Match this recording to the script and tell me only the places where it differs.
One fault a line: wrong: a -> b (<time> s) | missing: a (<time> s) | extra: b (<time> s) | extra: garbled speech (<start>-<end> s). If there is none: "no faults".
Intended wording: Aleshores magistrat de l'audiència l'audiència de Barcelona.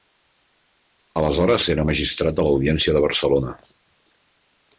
extra: era (1.7 s)
missing: l'audiència (3.0 s)